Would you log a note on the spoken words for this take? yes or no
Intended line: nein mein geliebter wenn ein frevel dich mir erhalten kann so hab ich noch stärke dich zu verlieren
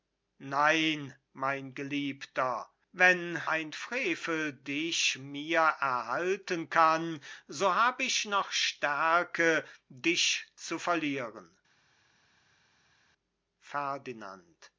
no